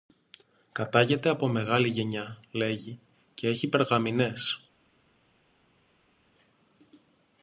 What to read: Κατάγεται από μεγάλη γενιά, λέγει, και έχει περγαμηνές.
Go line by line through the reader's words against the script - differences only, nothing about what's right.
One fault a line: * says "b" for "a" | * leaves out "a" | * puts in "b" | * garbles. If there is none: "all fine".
all fine